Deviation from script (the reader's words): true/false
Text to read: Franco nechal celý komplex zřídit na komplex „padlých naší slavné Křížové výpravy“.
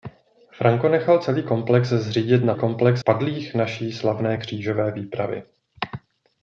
false